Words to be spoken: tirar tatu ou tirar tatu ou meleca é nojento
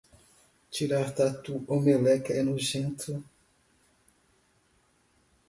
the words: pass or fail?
fail